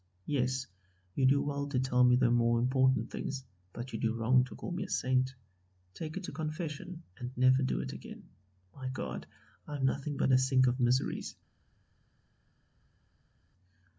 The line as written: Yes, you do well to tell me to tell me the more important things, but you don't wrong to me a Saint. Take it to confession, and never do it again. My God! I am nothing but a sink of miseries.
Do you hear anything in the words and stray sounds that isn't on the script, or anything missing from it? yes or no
yes